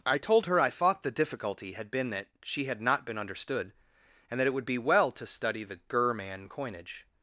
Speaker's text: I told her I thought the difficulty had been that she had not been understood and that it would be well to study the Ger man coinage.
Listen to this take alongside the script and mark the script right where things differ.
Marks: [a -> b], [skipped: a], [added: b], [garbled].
I told her I thought the difficulty had been that she had not been understood and that it would be well to study the Ger man coinage.